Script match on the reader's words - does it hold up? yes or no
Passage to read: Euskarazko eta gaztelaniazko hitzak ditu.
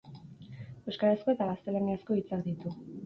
yes